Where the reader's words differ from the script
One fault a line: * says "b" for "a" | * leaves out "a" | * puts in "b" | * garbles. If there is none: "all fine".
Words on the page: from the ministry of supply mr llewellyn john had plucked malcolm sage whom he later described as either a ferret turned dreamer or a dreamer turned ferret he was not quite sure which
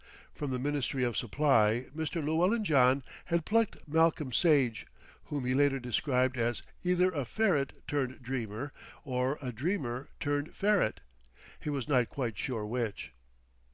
all fine